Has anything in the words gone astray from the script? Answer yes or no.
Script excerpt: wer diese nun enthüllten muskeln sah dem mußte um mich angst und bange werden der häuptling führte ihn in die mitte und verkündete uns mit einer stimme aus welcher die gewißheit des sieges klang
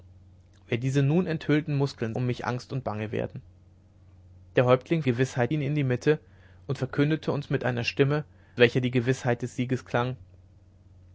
yes